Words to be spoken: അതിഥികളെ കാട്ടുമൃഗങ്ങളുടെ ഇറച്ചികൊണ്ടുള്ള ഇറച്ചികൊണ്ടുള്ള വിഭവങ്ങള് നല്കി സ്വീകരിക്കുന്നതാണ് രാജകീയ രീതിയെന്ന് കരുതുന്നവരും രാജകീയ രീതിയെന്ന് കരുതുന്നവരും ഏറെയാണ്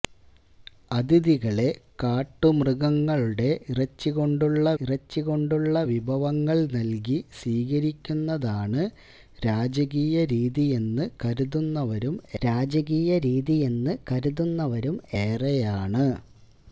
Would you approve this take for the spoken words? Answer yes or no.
yes